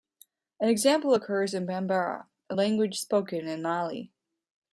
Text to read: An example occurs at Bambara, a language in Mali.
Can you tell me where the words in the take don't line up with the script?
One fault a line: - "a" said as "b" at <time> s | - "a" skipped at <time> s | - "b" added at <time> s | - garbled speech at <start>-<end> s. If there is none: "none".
- "at" said as "in" at 1.5 s
- "spoken" added at 3.0 s